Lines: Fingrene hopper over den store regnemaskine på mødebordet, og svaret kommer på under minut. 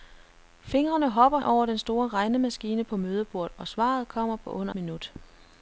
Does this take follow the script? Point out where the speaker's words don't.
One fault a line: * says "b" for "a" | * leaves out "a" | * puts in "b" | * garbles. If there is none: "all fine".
all fine